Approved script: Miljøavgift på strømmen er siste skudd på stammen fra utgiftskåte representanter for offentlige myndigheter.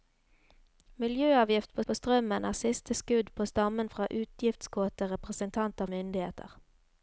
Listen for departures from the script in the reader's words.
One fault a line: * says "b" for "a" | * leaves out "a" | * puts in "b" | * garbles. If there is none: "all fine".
* puts in "på"
* leaves out "for offentlige"